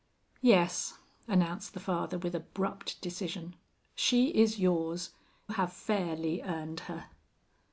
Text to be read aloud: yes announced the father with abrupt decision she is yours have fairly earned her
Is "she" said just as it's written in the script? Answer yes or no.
yes